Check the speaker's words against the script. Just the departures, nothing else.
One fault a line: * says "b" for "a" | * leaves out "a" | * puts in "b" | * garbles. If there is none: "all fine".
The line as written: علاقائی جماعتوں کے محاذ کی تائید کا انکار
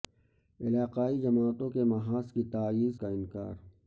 all fine